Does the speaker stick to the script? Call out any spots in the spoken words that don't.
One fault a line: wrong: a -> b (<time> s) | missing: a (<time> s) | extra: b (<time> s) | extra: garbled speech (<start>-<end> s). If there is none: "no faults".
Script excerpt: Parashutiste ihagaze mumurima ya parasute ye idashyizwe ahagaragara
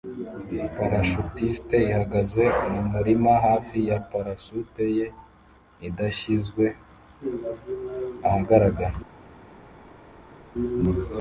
extra: hafi (3.5 s)